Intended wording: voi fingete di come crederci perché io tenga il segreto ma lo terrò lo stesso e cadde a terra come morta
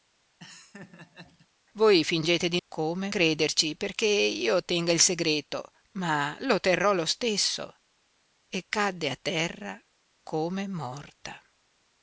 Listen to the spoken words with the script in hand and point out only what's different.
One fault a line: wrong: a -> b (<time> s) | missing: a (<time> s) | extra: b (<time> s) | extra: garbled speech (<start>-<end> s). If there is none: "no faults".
no faults